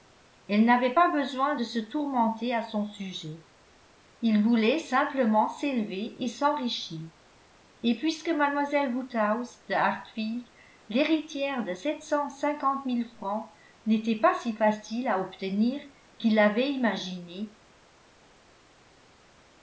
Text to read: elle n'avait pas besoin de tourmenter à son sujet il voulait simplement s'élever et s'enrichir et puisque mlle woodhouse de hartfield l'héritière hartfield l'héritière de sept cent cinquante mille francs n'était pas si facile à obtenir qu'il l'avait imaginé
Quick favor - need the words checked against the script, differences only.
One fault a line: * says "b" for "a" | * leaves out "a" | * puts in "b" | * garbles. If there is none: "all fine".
* puts in "se"
* leaves out "hartfield l'héritière"